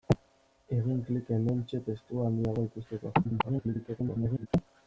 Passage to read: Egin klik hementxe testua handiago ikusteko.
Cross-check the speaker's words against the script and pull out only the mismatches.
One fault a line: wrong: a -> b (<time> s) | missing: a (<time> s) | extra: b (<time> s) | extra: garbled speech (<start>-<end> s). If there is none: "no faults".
extra: garbled speech (3.2-4.5 s)